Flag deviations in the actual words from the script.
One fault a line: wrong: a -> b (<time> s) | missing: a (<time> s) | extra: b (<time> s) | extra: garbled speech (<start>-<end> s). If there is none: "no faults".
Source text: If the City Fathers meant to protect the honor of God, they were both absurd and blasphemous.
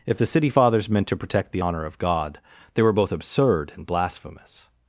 no faults